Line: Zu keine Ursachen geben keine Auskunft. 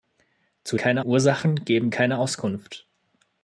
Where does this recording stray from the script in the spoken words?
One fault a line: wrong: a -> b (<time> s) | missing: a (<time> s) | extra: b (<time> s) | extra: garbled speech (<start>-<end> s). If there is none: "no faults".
no faults